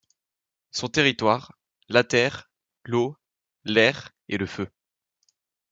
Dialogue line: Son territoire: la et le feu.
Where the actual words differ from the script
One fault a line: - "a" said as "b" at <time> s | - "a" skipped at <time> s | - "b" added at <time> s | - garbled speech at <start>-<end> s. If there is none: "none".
- "terre l'eau l'air" added at 2.0 s